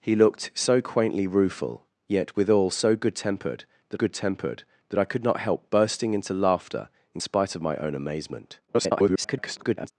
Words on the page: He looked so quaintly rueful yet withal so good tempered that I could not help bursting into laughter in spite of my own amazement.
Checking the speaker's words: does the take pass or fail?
fail